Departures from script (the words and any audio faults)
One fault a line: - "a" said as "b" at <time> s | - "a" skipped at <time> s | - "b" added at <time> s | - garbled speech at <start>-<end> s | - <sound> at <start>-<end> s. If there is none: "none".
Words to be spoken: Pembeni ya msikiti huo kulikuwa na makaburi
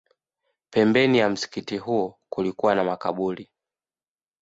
none